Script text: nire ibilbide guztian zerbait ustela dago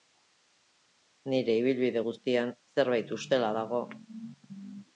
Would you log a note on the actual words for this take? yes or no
no